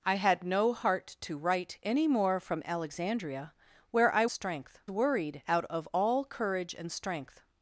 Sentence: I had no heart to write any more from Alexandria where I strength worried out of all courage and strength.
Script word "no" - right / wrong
right